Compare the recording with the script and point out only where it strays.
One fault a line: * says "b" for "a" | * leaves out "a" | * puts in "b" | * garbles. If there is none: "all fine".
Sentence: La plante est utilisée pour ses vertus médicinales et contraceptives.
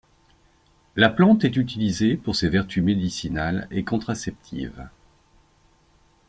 all fine